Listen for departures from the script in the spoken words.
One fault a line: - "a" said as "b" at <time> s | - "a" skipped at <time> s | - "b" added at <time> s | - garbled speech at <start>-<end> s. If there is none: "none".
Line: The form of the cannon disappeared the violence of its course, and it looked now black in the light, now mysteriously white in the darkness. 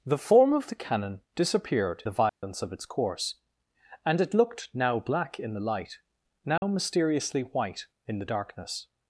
none